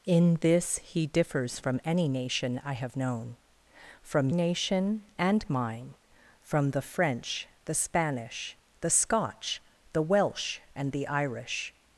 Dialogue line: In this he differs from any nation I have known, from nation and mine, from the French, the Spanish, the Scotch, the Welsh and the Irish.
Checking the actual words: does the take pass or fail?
pass